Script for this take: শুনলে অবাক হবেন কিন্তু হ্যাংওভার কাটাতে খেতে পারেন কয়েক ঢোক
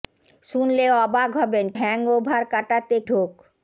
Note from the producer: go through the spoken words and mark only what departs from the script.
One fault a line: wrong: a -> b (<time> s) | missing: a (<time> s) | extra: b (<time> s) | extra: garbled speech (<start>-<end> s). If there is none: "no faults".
missing: কিন্তু (1.6 s)
missing: খেতে পারেন কয়েক (3.0 s)